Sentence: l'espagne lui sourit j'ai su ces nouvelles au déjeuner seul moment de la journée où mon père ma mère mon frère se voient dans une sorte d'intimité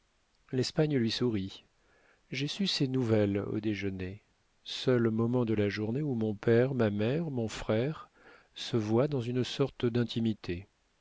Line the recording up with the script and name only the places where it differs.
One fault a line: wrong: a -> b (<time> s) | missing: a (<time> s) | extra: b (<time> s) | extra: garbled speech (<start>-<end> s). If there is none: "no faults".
no faults